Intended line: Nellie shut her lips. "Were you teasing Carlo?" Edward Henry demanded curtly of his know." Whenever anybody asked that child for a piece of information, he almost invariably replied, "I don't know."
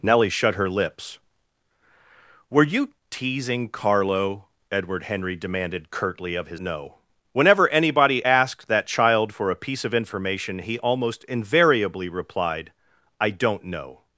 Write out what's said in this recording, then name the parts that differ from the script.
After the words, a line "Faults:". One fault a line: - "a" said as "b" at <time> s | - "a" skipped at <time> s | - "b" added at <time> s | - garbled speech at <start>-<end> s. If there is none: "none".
Nellie shut her lips. "Were you teasing Carlo?" Edward Henry demanded curtly of his know." Whenever anybody asked that child for a piece of information, he almost invariably replied, "I don't know."
Faults:
none